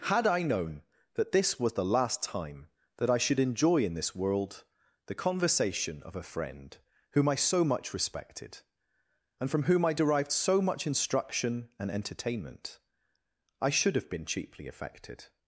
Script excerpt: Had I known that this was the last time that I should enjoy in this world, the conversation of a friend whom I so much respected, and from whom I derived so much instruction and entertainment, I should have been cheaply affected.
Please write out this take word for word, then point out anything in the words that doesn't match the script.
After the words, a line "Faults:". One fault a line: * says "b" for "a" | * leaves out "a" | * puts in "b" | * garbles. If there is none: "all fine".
Had I known that this was the last time that I should enjoy in this world, the conversation of a friend whom I so much respected, and from whom I derived so much instruction and entertainment, I should have been cheaply affected.
Faults:
all fine